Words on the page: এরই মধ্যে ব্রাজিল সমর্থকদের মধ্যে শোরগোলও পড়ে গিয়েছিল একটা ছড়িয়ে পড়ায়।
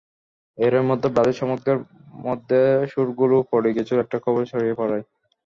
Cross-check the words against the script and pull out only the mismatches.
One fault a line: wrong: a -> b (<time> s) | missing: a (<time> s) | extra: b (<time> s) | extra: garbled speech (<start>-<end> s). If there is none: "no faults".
extra: খবর (4.2 s)